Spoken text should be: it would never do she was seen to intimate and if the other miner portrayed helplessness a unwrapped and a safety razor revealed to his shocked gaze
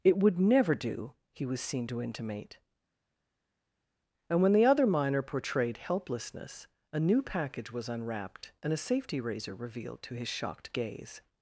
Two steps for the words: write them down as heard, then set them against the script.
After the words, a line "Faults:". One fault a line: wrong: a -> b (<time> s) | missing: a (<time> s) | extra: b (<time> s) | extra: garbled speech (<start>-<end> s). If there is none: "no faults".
it would never do he was seen to intimate and when the other miner portrayed helplessness a new package was unwrapped and a safety razor revealed to his shocked gaze
Faults:
wrong: she -> he (1.3 s)
wrong: if -> when (4.4 s)
extra: new package was (7.0 s)